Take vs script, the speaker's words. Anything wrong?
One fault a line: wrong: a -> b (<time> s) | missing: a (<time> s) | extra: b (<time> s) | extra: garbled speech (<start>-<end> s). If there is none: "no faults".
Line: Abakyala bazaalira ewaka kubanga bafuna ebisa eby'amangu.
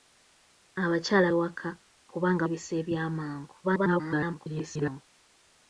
missing: bazaalira (1.3 s)
missing: bafuna (2.4 s)
extra: garbled speech (3.6-5.0 s)